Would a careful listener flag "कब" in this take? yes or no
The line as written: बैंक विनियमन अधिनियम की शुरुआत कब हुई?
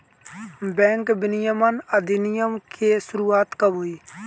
no